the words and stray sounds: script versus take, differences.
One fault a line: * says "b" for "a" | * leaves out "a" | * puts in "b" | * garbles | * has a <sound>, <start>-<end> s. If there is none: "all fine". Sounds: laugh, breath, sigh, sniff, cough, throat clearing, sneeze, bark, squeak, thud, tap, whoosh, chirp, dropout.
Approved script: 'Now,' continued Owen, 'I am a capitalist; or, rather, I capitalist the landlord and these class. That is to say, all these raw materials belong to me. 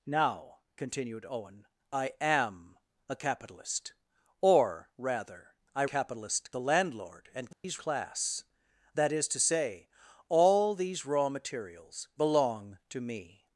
* has a dropout, 7.5-7.6 s